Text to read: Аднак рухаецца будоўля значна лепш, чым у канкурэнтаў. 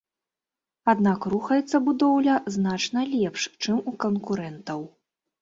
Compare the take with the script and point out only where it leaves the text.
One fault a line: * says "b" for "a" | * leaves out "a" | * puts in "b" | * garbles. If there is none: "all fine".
all fine